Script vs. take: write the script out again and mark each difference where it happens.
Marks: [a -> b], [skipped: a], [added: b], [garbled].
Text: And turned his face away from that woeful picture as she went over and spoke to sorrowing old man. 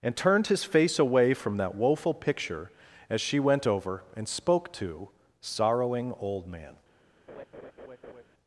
And turned his face away from that woeful picture as she went over and spoke to sorrowing old man.